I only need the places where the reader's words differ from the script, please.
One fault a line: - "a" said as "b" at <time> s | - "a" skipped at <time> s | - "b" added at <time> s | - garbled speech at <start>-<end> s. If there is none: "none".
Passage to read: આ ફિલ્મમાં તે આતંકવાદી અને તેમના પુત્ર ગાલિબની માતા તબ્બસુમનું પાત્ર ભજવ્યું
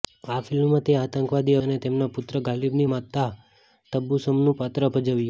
none